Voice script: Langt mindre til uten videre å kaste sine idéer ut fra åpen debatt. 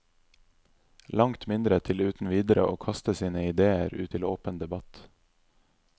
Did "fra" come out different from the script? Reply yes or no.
yes